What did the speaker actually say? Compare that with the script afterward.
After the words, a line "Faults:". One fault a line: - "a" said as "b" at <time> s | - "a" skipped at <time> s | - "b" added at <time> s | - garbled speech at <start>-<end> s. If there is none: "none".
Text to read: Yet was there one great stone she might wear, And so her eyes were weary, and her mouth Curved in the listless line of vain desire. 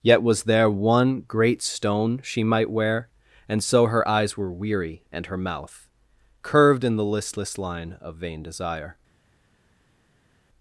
Yet was there one great stone she might wear, And so her eyes were weary, and her mouth Curved in the listless line of vain desire.
Faults:
none